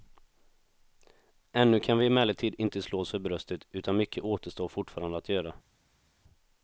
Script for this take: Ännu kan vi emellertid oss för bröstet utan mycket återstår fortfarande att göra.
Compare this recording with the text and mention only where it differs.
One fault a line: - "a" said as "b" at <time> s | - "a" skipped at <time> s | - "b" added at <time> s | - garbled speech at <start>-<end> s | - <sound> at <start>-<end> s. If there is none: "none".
- "inte slå" added at 2.6 s